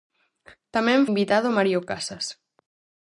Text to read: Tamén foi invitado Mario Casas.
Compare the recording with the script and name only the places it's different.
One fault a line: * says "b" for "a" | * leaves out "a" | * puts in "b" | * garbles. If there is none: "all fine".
* leaves out "foi"